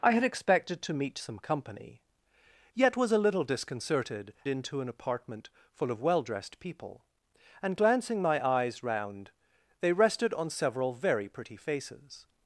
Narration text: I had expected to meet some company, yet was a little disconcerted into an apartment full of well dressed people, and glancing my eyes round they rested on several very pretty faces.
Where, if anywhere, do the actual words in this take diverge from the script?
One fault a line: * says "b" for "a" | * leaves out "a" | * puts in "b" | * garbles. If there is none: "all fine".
all fine